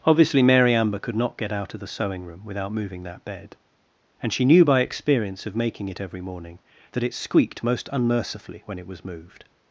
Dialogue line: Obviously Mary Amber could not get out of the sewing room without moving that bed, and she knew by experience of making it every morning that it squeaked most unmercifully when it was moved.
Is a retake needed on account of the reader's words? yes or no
no